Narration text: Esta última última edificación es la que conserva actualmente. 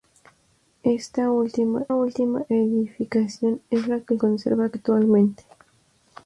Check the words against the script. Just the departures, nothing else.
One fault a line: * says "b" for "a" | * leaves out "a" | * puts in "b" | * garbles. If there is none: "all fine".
all fine